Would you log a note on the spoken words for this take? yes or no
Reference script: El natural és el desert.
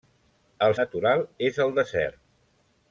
no